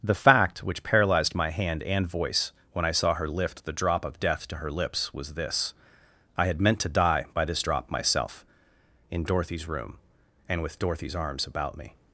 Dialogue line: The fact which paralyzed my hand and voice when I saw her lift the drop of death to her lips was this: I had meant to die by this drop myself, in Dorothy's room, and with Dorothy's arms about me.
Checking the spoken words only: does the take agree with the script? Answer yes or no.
yes